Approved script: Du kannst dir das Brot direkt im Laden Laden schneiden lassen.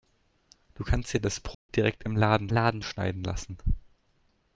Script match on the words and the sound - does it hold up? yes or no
no